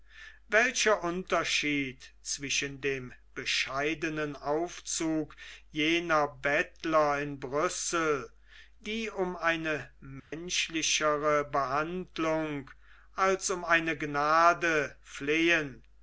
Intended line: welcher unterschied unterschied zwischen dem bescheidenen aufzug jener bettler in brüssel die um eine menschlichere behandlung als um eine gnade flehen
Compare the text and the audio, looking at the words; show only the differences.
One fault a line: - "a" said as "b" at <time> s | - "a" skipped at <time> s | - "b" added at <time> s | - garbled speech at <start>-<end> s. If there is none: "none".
- "unterschied" skipped at 2.1 s